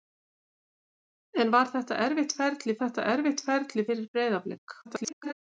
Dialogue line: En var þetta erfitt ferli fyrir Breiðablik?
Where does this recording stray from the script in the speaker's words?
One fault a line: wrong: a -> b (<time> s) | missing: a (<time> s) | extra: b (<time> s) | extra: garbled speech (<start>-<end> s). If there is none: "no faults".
extra: þetta erfitt ferli (2.8 s)
extra: garbled speech (4.8-5.3 s)